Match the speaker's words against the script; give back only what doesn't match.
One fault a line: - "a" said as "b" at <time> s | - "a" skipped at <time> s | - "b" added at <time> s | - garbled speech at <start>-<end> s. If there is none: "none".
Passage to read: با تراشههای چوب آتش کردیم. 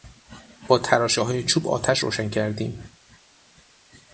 - "روشن" added at 2.0 s